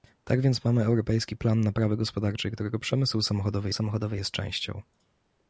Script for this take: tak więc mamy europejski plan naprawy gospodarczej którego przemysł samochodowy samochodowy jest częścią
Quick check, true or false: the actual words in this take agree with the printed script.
true